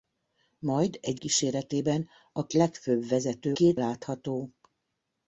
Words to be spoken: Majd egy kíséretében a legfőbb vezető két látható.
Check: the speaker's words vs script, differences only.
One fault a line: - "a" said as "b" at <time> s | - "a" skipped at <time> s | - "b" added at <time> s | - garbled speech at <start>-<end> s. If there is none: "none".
none